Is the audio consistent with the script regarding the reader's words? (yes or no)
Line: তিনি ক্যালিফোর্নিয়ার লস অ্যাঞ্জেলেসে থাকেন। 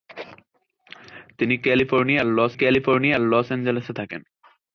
no